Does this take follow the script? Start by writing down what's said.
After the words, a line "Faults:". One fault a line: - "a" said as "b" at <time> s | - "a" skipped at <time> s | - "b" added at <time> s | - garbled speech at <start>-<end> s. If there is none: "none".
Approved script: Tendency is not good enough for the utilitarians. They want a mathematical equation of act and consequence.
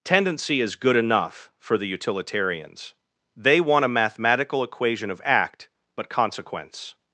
Tendency is good enough for the utilitarians. They want a mathematical equation of act but consequence.
Faults:
- "not" skipped at 0.8 s
- "and" said as "but" at 5.9 s